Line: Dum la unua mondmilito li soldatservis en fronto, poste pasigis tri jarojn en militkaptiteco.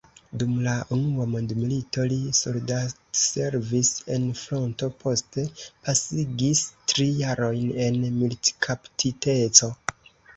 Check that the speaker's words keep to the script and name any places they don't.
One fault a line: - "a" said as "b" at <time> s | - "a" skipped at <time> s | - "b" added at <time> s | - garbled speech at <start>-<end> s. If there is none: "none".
none